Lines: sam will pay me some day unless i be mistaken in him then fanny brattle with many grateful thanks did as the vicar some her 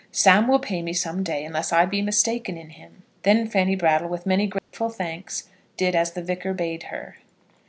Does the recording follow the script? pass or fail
fail